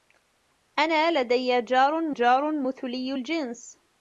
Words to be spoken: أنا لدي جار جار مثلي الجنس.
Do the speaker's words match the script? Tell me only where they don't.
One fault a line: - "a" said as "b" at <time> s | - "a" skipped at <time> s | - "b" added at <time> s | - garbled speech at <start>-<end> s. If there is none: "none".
none